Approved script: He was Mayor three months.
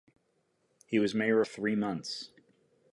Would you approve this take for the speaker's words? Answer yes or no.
yes